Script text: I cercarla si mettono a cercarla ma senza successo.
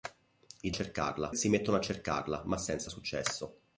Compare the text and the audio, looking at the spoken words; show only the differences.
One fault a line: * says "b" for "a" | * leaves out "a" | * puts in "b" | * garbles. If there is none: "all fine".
all fine